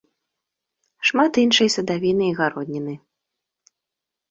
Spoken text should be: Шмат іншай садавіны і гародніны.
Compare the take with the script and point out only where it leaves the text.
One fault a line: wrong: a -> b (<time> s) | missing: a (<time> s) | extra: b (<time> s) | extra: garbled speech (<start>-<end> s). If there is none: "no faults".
no faults